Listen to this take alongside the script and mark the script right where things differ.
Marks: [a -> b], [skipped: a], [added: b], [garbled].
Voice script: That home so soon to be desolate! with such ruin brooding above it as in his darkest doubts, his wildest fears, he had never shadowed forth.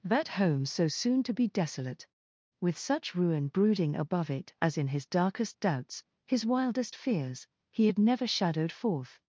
That home so soon to be desolate! with such ruin brooding above it as in his darkest doubts, his wildest fears, he had never shadowed forth.